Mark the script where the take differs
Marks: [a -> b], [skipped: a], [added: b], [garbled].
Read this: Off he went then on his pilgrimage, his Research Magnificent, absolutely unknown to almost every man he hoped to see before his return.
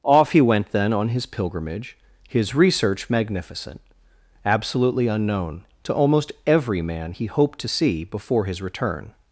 Off he went then on his pilgrimage, his Research Magnificent, absolutely unknown to almost every man he hoped to see before his return.